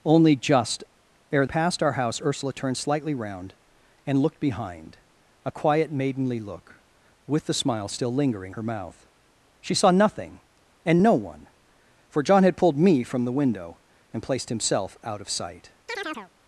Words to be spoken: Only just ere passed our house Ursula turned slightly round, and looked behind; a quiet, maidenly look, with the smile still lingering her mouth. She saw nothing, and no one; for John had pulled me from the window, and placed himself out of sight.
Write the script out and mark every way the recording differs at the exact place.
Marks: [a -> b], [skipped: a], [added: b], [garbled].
Only just ere passed our house Ursula turned slightly round, and looked behind; a quiet, maidenly look, with the smile still lingering her mouth. She saw nothing, and no one; for John had pulled me from the window, and placed himself out of sight.